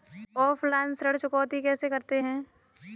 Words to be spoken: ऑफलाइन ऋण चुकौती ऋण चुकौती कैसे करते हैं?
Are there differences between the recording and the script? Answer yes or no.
yes